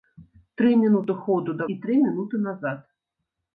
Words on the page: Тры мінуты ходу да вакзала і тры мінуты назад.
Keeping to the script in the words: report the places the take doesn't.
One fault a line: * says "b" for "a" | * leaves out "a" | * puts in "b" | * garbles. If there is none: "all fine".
* leaves out "вакзала"